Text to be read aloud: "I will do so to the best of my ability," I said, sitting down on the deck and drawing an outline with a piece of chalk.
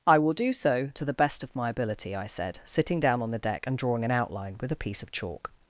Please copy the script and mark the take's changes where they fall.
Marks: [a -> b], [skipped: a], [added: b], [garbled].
"I will do so to the best of my ability," I said, sitting down on the deck and drawing an outline with a piece of chalk.